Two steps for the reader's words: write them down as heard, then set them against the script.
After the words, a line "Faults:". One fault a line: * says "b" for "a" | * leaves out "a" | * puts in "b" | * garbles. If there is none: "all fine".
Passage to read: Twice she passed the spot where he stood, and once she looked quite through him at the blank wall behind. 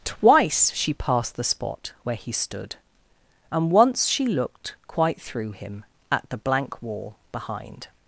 Twice she passed the spot where he stood, and once she looked quite through him at the blank wall behind.
Faults:
all fine